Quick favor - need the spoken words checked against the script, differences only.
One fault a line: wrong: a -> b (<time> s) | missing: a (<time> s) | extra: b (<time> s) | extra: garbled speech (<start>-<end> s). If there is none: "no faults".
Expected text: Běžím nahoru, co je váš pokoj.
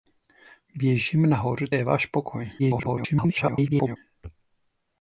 missing: co (1.7 s)
extra: garbled speech (2.6-4.0 s)